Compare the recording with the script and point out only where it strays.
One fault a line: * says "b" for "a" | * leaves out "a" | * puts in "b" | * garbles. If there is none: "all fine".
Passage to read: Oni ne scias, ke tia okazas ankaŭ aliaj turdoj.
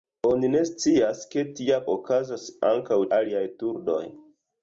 all fine